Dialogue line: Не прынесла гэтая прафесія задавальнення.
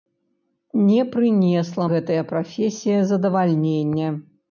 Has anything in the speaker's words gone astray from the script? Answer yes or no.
no